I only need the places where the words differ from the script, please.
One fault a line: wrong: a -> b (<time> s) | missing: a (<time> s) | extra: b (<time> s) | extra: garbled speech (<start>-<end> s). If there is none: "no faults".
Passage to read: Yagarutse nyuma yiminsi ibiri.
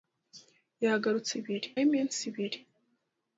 wrong: nyuma -> ibiri (1.4 s)